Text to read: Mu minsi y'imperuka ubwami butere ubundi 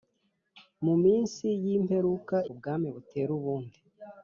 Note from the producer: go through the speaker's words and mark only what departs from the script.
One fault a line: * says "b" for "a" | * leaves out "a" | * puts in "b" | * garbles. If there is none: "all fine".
all fine